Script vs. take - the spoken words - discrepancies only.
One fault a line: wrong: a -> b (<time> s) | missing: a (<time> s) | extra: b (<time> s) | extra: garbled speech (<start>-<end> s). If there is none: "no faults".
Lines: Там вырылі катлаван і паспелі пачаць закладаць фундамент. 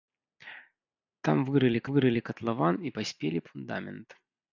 extra: вырылі (1.9 s)
missing: пачаць закладаць (3.5 s)